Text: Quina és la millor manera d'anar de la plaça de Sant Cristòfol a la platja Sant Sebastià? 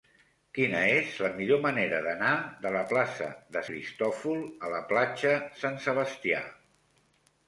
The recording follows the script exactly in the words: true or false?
false